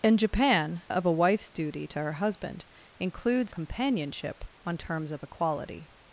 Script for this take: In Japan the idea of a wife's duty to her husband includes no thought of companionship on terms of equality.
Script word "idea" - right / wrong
wrong